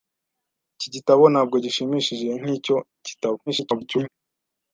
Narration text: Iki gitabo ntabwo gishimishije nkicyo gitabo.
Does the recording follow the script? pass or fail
fail